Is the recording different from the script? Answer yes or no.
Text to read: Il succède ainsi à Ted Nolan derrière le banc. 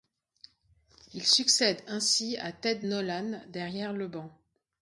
no